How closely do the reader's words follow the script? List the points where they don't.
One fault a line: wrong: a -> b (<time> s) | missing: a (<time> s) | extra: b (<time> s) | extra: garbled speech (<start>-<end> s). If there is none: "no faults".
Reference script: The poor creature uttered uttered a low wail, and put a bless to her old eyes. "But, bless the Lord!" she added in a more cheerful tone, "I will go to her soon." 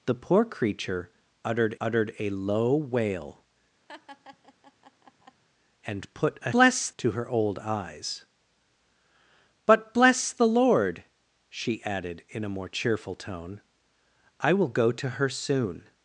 no faults